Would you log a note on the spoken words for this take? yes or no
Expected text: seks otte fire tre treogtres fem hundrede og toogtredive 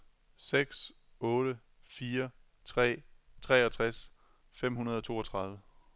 no